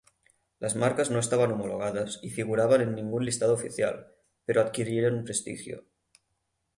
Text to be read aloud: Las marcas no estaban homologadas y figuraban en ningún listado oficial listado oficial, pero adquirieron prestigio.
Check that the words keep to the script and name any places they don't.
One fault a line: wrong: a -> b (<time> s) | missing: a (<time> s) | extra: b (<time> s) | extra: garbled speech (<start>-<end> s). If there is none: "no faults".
missing: listado oficial (4.1 s)